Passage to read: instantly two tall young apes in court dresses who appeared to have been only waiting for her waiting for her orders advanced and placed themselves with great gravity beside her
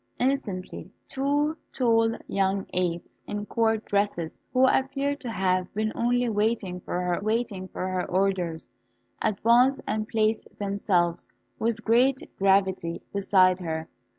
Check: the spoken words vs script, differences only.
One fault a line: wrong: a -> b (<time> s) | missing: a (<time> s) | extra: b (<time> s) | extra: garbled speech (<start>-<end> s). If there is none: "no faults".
no faults